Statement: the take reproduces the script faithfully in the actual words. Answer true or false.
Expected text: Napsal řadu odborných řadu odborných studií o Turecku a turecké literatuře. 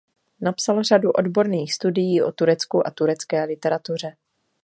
false